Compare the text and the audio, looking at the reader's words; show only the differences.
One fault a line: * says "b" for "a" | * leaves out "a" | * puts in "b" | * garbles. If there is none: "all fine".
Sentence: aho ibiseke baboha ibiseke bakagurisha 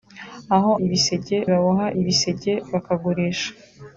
all fine